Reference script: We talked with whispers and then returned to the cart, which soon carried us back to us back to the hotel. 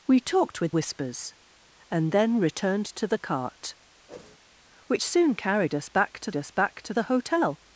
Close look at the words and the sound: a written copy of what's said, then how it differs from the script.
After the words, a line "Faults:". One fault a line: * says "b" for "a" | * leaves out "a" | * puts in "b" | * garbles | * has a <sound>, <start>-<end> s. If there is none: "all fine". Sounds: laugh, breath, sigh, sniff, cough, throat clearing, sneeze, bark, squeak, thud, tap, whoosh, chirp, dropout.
We talked with whispers and then returned to the cart, which soon carried us back to us back to the hotel.
Faults:
* has a whoosh, 4.1-4.4 s